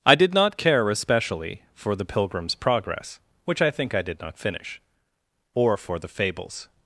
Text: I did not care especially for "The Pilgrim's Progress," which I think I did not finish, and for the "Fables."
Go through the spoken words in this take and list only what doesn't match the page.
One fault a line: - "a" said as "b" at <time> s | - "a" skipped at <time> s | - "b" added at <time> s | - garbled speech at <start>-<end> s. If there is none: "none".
- "and" said as "or" at 5.5 s